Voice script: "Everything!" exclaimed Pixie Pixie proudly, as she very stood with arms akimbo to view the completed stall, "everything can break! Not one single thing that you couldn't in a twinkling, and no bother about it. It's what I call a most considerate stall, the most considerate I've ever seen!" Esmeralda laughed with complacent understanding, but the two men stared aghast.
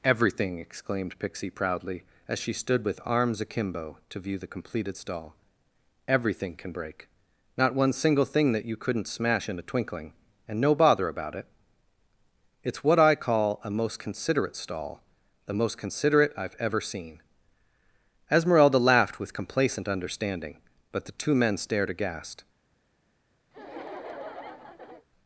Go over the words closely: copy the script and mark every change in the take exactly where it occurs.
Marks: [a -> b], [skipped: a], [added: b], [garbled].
"Everything!" exclaimed Pixie [skipped: Pixie] proudly, as she [skipped: very] stood with arms akimbo to view the completed stall, "everything can break! Not one single thing that you couldn't [added: smash] in a twinkling, and no bother about it. It's what I call a most considerate stall, the most considerate I've ever seen!" Esmeralda laughed with complacent understanding, but the two men stared aghast.